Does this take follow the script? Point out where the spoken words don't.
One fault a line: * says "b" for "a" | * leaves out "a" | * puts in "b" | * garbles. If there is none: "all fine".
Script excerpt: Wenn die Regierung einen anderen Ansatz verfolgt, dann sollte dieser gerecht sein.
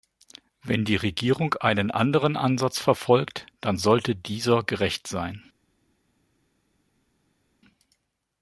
all fine